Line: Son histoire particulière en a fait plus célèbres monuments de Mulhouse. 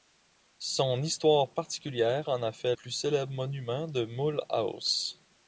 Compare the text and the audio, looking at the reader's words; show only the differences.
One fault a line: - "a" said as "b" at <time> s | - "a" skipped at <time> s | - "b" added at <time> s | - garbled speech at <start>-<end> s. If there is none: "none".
none